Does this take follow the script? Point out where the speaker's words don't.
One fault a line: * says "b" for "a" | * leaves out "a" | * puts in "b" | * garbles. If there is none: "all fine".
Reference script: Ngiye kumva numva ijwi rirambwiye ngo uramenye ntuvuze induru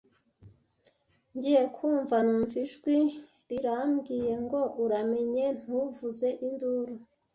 all fine